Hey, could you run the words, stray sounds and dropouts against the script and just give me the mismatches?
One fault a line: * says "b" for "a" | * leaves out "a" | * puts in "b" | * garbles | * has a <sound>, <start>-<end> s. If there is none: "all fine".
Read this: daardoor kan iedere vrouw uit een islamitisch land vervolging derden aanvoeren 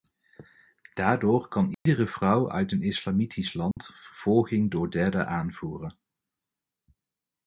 * has a dropout, 1.7-1.9 s
* has a dropout, 3.7-3.8 s
* puts in "door"